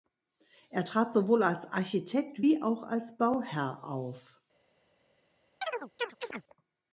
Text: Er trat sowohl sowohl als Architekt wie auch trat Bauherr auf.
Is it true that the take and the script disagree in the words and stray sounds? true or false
true